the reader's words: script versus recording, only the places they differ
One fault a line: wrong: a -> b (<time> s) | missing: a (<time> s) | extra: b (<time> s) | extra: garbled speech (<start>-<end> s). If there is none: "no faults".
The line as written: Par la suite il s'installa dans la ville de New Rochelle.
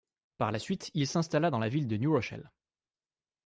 no faults